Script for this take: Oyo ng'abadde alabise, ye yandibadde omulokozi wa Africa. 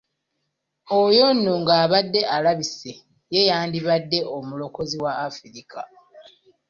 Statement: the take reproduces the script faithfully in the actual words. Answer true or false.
false